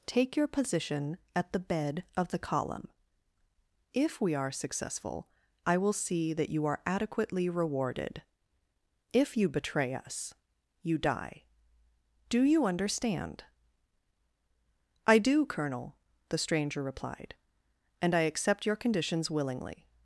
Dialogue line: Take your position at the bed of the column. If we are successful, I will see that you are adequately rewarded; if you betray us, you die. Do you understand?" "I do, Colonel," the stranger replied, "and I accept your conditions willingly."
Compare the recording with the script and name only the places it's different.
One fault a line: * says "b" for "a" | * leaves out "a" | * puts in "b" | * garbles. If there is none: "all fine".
all fine